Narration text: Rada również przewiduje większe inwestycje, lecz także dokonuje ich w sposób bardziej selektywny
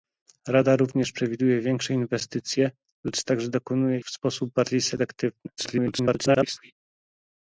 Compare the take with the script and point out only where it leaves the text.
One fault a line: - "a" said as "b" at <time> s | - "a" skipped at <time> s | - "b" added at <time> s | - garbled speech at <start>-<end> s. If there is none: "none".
- "ich" skipped at 4.0 s
- garbled speech at 5.6-6.7 s